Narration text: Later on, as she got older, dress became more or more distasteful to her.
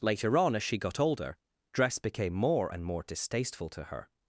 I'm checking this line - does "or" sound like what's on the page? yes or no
no